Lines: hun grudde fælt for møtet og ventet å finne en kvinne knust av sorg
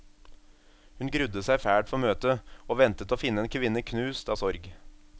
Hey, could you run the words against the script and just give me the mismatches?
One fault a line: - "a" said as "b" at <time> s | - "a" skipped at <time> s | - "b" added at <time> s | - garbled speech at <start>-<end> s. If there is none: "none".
- "seg" added at 1.5 s